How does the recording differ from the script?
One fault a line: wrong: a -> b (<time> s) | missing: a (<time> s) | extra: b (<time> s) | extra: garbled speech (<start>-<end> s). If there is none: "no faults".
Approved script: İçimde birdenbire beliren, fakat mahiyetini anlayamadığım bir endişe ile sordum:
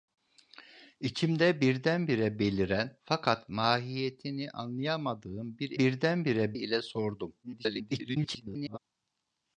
wrong: endişe -> birdenbire (5.8 s)
extra: garbled speech (7.4-8.8 s)